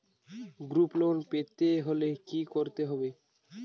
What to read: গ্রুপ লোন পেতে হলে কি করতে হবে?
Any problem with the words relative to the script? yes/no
no